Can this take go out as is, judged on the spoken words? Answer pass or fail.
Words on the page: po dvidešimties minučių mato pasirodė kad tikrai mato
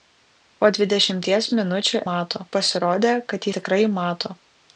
pass